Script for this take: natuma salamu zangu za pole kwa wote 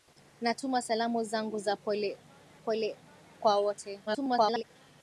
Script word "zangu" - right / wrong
right